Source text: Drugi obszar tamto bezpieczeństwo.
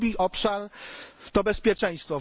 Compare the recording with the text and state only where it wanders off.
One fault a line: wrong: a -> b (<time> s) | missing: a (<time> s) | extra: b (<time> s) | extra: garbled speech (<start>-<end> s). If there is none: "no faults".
wrong: tamto -> to (1.3 s)